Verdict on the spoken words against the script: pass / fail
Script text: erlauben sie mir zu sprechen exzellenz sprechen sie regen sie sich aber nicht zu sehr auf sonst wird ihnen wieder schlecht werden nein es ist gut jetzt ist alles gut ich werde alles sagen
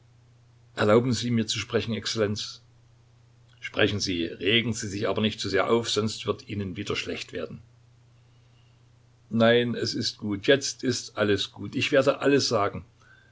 pass